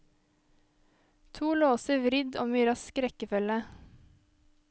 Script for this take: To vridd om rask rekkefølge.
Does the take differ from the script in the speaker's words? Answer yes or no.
yes